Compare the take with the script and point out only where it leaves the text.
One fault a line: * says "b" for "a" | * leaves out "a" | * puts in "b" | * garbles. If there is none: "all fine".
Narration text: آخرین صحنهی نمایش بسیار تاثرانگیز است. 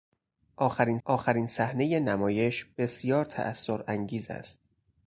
* puts in "آخرین"